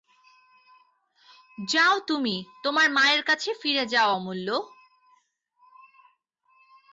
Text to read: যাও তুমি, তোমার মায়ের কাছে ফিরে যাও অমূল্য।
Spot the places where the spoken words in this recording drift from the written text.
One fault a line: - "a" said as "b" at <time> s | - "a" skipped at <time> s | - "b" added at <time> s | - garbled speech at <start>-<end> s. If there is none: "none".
none